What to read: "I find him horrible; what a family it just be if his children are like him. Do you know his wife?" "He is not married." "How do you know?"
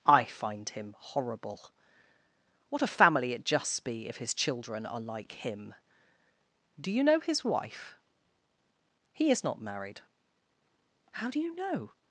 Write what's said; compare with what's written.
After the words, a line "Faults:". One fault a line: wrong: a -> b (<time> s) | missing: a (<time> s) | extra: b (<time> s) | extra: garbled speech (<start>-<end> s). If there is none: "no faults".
"I find him horrible; what a family it just be if his children are like him. Do you know his wife?" "He is not married." "How do you know?"
Faults:
no faults